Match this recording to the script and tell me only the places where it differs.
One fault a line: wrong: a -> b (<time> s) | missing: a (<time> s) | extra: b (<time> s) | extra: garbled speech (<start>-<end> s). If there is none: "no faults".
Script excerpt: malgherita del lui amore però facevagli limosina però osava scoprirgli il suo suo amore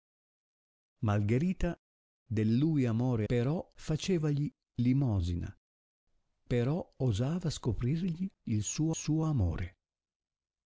no faults